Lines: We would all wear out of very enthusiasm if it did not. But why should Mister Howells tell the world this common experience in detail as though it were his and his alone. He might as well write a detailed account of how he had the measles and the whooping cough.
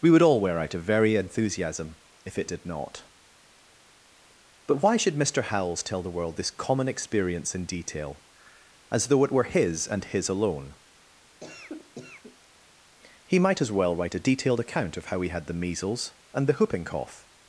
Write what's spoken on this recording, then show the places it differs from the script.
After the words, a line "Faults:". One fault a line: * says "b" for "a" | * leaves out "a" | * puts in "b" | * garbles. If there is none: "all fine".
We would all wear out of very enthusiasm if it did not. But why should Mister Howells tell the world this common experience in detail as though it were his and his alone. He might as well write a detailed account of how he had the measles and the whooping cough.
Faults:
all fine